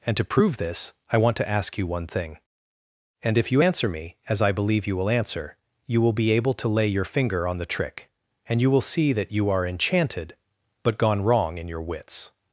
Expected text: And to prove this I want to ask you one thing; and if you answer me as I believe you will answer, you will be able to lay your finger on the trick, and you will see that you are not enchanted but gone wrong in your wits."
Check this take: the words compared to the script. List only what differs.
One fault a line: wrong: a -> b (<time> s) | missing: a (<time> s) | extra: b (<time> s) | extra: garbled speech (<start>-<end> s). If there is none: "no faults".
missing: not (9.7 s)